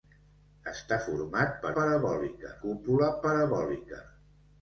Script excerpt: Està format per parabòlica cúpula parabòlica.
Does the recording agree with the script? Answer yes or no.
yes